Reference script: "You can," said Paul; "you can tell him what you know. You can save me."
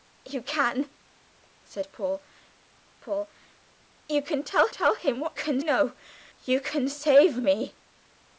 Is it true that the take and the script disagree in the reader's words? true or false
true